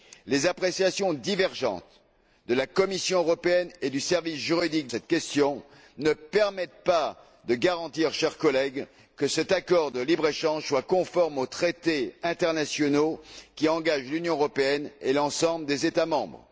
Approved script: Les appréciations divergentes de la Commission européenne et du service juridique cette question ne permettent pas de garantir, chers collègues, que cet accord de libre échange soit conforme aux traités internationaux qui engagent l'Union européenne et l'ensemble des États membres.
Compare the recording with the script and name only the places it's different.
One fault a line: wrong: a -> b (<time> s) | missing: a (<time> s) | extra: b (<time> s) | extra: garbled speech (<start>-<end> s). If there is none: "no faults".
no faults